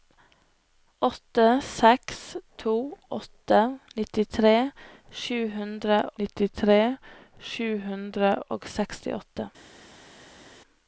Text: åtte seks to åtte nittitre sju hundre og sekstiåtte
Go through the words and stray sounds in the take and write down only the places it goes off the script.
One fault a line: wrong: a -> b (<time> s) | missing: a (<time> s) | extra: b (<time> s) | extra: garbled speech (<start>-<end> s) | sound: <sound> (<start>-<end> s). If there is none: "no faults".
extra: nittitre sju hundre (6.2 s)